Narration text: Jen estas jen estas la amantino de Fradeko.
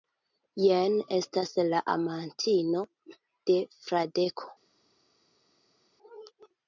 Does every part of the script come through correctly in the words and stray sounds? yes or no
no